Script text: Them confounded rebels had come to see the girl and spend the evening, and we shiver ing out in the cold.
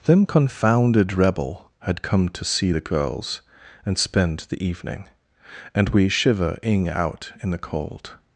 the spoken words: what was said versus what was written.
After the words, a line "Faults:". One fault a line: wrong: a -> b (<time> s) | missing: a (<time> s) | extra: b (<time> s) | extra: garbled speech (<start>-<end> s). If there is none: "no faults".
Them confounded rebel had come to see the girls and spend the evening, and we shiver ing out in the cold.
Faults:
wrong: rebels -> rebel (1.1 s)
wrong: girl -> girls (2.8 s)